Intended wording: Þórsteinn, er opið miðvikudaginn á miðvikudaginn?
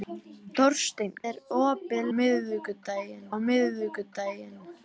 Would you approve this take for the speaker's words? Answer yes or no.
yes